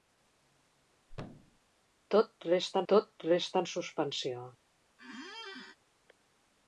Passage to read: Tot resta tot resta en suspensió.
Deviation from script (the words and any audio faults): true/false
true